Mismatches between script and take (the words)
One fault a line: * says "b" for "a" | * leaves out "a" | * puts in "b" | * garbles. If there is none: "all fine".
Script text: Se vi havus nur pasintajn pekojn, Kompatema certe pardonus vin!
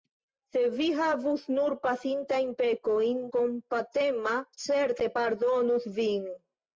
all fine